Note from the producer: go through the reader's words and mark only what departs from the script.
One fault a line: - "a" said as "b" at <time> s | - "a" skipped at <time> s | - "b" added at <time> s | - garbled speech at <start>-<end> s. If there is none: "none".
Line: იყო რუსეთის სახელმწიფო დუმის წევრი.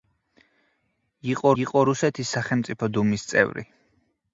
- "იყო" added at 1.6 s